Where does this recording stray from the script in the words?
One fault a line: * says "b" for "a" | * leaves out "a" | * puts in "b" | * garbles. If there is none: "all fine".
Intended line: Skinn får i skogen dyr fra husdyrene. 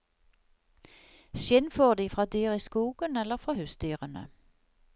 * puts in "de fra dyr"
* says "eller" for "dyr"